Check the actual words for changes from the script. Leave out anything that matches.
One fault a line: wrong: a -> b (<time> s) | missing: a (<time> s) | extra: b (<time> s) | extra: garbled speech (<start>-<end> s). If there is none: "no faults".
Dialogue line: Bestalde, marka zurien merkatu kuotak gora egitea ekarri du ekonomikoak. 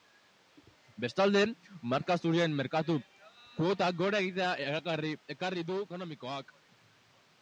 no faults